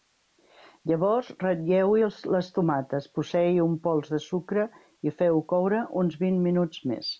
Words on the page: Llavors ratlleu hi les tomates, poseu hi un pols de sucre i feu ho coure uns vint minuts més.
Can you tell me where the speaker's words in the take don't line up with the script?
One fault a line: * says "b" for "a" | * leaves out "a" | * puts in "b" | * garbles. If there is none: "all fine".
all fine